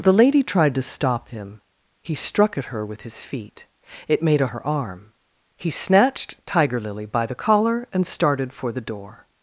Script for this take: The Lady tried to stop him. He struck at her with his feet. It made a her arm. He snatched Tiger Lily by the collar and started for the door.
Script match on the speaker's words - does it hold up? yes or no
yes